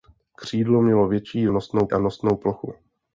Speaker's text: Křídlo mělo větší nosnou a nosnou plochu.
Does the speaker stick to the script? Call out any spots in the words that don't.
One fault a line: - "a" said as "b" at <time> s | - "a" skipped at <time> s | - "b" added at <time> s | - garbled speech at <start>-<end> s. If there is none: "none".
none